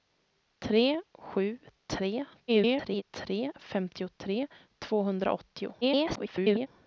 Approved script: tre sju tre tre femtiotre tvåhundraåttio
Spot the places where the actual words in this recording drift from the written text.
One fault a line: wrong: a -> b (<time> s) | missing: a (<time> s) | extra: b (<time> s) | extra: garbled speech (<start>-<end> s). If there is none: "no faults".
extra: garbled speech (2.5-3.0 s)
extra: garbled speech (5.8-6.7 s)